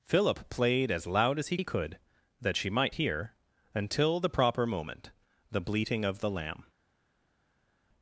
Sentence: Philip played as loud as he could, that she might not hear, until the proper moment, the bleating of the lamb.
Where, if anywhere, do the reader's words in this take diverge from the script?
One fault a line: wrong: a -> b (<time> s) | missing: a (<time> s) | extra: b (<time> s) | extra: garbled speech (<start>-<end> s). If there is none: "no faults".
extra: he (1.5 s)
missing: not (2.9 s)